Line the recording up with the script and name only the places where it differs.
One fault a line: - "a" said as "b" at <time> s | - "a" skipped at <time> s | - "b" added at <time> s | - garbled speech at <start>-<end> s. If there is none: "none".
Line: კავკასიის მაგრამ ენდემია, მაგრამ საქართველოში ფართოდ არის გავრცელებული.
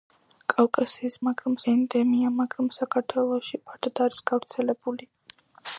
none